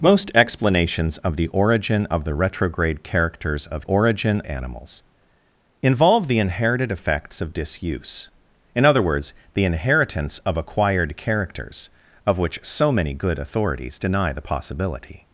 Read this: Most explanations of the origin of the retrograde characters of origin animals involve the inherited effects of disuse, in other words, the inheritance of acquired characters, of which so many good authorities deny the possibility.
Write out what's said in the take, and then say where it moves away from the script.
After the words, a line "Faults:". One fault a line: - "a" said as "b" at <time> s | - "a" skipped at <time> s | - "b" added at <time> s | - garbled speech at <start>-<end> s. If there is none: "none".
Most explanations of the origin of the retrograde characters of origin animals involve the inherited effects of disuse, in other words, the inheritance of acquired characters, of which so many good authorities deny the possibility.
Faults:
none